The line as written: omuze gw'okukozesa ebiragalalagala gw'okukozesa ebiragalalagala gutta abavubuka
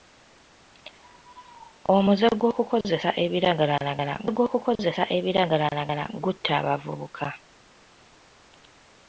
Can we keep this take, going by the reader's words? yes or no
yes